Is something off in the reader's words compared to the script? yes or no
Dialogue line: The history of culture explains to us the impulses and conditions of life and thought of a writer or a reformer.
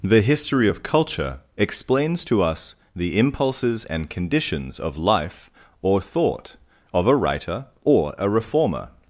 yes